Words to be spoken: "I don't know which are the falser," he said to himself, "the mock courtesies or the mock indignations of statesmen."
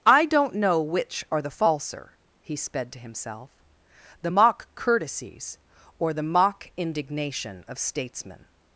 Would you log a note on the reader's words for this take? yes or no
yes